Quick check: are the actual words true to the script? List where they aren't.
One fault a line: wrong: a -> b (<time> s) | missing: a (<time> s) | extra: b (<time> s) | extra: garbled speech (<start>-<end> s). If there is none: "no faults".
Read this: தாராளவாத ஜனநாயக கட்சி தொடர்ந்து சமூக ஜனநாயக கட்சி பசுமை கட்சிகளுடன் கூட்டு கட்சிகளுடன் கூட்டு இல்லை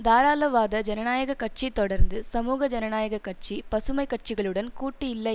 missing: கட்சிகளுடன் கூட்டு (5.1 s)